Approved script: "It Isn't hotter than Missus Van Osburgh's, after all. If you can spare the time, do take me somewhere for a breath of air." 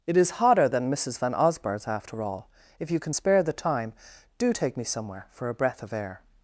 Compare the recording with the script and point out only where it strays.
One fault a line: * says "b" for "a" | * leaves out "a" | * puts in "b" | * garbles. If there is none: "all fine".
* says "IS" for "Isn't"